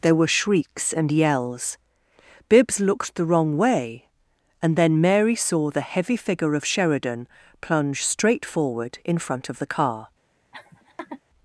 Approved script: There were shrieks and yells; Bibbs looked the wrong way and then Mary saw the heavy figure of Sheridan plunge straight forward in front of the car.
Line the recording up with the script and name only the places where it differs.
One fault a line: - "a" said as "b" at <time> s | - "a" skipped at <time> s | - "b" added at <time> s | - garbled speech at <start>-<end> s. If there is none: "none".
none